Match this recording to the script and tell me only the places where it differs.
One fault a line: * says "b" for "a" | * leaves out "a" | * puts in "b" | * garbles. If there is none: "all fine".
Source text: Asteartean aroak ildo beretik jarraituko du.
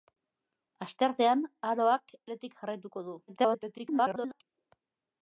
* leaves out "ildo"
* garbles